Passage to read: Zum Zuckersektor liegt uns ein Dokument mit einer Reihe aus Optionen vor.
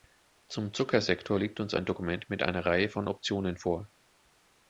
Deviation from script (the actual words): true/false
true